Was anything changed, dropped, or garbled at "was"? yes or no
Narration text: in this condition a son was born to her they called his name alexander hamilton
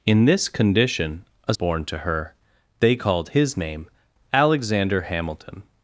yes